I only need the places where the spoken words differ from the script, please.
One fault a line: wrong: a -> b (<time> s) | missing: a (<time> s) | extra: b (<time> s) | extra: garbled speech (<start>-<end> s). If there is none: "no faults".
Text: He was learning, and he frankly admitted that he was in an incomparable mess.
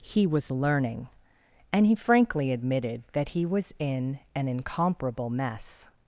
no faults